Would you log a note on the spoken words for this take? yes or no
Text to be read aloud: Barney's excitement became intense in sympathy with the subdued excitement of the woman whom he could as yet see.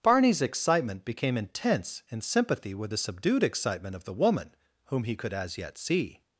no